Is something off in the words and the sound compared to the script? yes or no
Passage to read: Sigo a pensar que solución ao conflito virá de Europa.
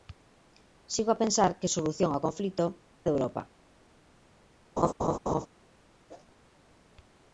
yes